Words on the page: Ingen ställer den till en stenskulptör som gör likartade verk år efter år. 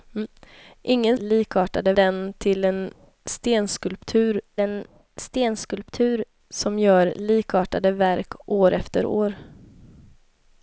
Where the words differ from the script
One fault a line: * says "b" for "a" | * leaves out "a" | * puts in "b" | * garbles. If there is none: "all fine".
* says "likartade" for "ställer"
* puts in "en stenskulptör"